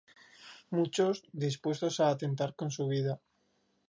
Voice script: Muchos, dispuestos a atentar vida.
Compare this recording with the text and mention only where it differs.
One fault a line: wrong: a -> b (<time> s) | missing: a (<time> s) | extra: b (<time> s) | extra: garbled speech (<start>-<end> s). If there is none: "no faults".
extra: con su (2.5 s)